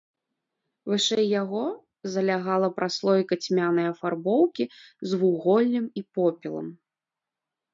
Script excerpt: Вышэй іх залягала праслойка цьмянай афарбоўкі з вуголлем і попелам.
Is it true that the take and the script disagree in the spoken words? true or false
true